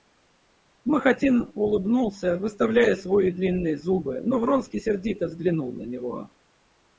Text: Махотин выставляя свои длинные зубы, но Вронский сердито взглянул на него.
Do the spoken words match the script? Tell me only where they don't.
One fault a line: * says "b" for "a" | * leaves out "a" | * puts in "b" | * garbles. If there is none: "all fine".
* puts in "улыбнулся"